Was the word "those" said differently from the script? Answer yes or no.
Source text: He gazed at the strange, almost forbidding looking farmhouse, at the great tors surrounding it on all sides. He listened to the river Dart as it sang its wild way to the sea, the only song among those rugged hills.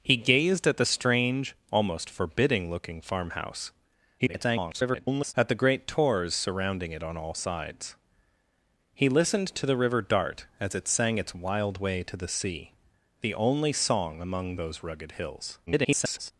no